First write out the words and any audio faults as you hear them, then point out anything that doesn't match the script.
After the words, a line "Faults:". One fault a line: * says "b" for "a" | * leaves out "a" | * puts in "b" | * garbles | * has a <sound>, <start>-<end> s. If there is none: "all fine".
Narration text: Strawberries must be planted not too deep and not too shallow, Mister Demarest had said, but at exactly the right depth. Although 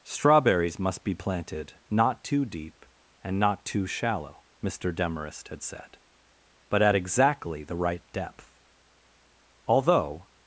Strawberries must be planted not too deep and not too shallow, Mister Demarest had said, but at exactly the right depth. Although
Faults:
all fine